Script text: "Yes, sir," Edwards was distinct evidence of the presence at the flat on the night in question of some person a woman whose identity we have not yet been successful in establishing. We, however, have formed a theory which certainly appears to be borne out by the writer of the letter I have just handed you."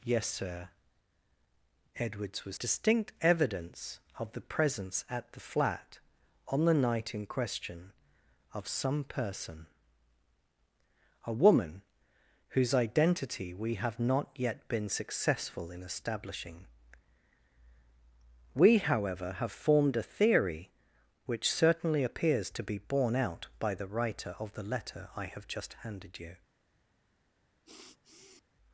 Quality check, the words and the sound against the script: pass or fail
fail